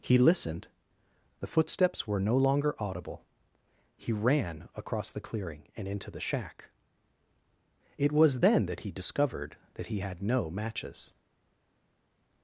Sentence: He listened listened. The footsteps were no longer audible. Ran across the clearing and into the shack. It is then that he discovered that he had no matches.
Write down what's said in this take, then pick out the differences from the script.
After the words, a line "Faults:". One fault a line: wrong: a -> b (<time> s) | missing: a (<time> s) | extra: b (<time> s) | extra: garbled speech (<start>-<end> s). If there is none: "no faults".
He listened. The footsteps were no longer audible. He ran across the clearing and into the shack. It was then that he discovered that he had no matches.
Faults:
missing: listened (0.7 s)
extra: He (4.0 s)
wrong: is -> was (8.1 s)